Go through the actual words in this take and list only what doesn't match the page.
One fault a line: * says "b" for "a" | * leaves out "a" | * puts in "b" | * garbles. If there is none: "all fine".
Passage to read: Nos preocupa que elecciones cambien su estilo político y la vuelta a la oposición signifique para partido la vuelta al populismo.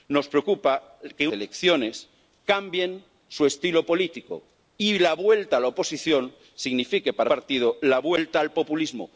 all fine